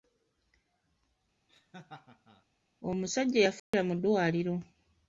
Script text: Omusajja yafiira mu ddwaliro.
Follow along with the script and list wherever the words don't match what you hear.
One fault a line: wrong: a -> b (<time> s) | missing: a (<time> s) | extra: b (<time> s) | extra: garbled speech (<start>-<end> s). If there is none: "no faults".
no faults